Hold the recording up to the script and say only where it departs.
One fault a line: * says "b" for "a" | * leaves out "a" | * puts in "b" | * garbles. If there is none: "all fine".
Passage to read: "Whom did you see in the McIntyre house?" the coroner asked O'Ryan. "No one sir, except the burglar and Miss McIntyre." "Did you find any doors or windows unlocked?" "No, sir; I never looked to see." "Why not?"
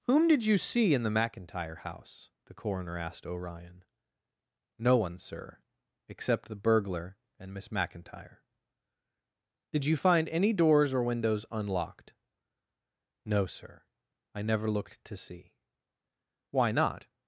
all fine